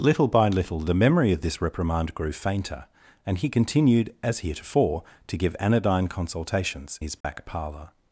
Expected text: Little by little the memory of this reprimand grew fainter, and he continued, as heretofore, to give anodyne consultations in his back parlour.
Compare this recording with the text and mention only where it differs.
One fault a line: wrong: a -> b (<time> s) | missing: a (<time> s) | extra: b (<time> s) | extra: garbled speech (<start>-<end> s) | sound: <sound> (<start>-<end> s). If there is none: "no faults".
missing: in (7.0 s)
sound: dropout (7.2-7.2 s)